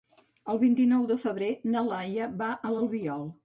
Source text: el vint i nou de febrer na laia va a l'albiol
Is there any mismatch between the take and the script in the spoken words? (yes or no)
no